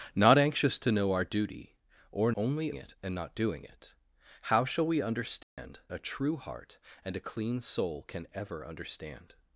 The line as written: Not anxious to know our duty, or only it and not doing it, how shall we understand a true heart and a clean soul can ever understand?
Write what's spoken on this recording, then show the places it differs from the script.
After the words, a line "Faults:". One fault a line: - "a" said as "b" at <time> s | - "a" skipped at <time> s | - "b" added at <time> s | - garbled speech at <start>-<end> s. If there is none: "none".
Not anxious to know our duty, or only it and not doing it, how shall we understand a true heart and a clean soul can ever understand?
Faults:
none